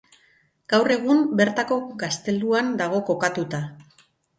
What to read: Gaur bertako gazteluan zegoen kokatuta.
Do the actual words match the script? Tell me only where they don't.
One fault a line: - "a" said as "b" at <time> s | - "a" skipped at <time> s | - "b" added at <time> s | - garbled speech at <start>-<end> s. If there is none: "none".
- "egun" added at 0.9 s
- "zegoen" said as "dago" at 2.8 s